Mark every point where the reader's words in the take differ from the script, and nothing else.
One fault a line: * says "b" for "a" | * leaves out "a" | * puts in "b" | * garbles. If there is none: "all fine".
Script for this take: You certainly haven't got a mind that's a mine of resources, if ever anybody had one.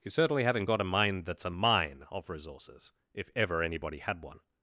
all fine